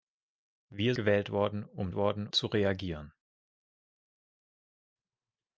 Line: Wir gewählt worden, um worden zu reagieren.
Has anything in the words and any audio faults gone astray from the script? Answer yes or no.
no